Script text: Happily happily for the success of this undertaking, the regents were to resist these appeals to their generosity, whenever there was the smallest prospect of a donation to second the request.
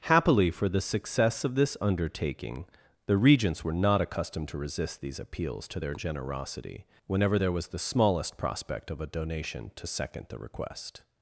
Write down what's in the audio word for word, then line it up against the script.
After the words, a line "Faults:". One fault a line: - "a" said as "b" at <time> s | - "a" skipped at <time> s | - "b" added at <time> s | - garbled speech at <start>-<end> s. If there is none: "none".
Happily for the success of this undertaking, the regents were not accustomed to resist these appeals to their generosity, whenever there was the smallest prospect of a donation to second the request.
Faults:
- "happily" skipped at 0.5 s
- "not accustomed" added at 3.7 s